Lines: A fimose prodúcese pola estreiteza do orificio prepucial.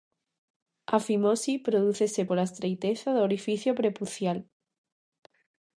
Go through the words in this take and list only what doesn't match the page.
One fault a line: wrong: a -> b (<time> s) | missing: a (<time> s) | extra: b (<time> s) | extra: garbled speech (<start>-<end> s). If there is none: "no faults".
no faults